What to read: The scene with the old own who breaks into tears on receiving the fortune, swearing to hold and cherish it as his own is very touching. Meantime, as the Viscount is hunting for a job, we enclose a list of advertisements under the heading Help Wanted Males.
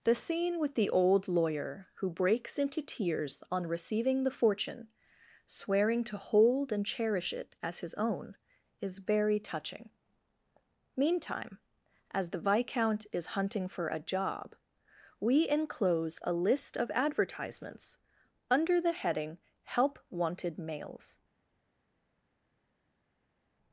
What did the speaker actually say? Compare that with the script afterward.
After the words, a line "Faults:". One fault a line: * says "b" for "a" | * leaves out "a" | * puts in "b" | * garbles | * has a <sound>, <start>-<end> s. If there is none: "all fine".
The scene with the old lawyer who breaks into tears on receiving the fortune, swearing to hold and cherish it as his own is very touching. Meantime, as the Viscount is hunting for a job, we enclose a list of advertisements under the heading Help Wanted Males.
Faults:
* says "lawyer" for "own"